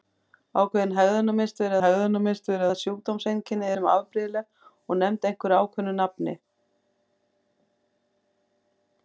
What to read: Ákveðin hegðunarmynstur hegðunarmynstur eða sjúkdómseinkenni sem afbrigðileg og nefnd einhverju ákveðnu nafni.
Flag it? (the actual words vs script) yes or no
no